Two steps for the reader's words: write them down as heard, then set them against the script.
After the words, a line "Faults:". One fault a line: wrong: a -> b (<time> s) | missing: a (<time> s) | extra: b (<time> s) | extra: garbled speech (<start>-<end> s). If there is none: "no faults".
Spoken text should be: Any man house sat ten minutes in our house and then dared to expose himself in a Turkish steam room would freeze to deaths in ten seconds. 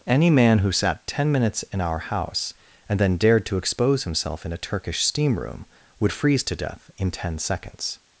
Any man who sat ten minutes in our house and then dared to expose himself in a Turkish steam room would freeze to death in ten seconds.
Faults:
wrong: house -> who (0.6 s)
wrong: deaths -> death (6.5 s)